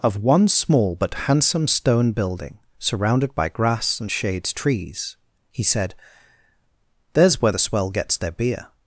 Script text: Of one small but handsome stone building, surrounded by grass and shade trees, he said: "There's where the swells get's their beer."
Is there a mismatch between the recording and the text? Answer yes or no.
yes